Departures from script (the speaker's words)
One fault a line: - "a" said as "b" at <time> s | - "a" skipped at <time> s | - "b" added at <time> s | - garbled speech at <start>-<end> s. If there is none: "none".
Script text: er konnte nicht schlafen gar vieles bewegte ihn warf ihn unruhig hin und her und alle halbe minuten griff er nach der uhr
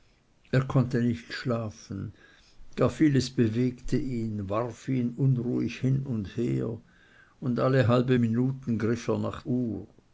- "der" skipped at 9.4 s